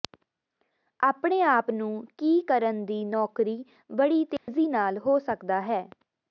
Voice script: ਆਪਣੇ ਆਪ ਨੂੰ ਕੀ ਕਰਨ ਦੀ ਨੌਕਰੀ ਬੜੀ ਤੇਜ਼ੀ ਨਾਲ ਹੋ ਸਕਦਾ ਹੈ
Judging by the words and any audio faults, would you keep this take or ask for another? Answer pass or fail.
fail